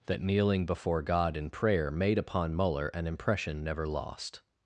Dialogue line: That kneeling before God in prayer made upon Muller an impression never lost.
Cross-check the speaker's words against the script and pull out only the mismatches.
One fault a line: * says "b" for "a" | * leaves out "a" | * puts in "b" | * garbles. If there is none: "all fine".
all fine